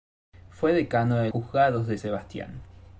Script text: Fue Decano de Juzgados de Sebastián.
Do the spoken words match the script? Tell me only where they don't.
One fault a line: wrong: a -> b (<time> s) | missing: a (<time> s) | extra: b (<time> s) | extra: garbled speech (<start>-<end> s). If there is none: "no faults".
no faults